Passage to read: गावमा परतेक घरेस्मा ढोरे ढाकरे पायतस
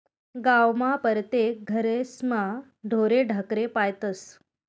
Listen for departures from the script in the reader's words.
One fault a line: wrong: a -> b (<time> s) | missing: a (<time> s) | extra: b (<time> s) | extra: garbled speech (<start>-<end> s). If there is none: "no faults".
no faults